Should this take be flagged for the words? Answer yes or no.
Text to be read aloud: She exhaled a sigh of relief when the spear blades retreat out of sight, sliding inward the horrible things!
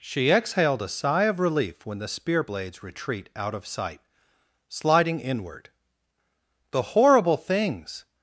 no